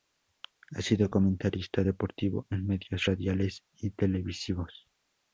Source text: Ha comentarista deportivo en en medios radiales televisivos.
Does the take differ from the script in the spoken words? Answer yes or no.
yes